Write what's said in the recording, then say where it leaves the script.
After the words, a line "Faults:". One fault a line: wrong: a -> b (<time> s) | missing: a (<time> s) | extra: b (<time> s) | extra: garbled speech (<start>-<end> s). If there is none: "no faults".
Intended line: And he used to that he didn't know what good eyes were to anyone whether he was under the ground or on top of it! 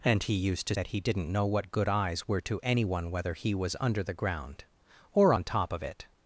And he used to that he didn't know what good eyes were to anyone whether he was under the ground or on top of it!
Faults:
no faults